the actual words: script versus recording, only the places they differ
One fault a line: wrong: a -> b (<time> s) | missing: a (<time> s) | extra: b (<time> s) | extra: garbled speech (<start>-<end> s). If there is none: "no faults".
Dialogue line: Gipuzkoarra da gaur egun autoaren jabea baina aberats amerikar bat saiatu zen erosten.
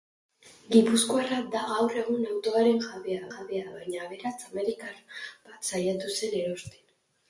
extra: jabea (3.3 s)